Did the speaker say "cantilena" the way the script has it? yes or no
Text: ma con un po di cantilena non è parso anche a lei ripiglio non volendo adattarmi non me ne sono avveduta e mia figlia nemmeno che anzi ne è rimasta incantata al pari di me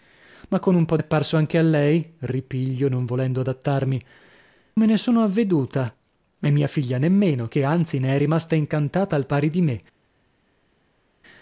no